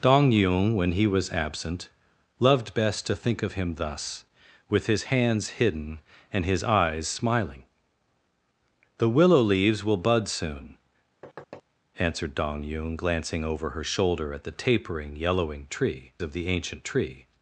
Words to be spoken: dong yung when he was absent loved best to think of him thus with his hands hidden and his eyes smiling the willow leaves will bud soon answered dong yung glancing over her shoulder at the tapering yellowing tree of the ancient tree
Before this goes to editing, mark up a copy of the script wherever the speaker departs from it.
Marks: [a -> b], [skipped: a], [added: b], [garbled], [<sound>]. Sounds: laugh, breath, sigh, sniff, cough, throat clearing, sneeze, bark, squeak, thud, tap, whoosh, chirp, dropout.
dong yung when he was absent loved best to think of him thus with his hands hidden and his eyes smiling the willow leaves will bud soon [thud] answered dong yung glancing over her shoulder at the tapering yellowing tree of the ancient tree